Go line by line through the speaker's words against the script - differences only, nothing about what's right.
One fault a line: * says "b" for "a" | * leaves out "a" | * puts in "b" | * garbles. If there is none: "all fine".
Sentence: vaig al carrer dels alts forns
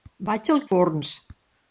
* leaves out "carrer dels alts"